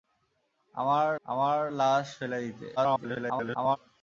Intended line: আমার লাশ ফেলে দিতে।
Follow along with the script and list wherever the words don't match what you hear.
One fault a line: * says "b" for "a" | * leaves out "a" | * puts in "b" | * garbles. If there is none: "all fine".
* puts in "আমার"
* garbles